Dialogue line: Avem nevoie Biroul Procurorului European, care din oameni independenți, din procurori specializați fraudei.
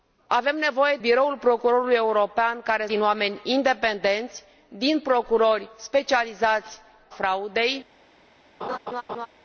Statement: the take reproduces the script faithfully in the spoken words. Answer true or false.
true